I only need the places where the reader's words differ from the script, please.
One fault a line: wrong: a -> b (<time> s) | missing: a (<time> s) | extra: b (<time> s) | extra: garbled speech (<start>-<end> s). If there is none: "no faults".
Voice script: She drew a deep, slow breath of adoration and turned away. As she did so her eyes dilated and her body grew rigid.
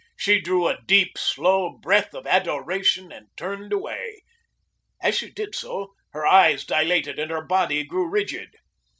no faults